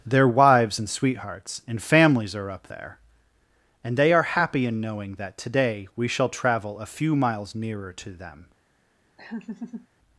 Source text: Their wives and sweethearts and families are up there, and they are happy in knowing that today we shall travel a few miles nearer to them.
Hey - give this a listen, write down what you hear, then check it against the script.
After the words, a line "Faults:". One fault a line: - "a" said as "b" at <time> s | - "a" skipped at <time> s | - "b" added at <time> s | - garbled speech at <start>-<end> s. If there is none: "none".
Their wives and sweethearts and families are up there, and they are happy in knowing that today we shall travel a few miles nearer to them.
Faults:
none